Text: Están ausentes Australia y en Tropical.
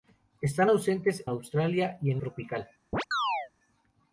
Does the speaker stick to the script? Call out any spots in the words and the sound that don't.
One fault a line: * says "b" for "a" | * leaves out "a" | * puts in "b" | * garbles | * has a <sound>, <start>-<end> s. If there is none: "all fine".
* has a chirp, 2.9-3.5 s